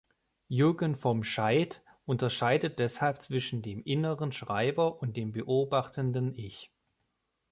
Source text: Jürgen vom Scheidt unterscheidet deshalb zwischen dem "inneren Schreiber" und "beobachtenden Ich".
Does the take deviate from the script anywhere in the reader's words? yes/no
yes